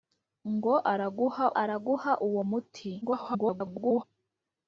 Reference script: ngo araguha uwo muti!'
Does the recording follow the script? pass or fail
fail